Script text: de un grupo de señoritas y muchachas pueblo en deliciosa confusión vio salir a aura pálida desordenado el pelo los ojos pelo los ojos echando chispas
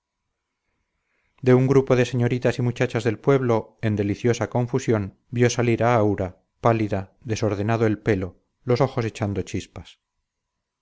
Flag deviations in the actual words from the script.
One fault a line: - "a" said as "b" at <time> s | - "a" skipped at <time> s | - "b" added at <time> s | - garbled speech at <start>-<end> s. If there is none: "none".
- "del" added at 3.0 s
- "pelo los ojos" skipped at 9.1 s